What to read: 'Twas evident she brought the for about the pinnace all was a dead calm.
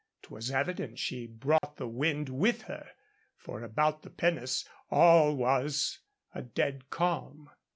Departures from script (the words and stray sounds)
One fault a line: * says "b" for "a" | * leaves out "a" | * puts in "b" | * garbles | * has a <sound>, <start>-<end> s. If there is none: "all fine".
* has a dropout, 1.6-1.6 s
* puts in "wind with her"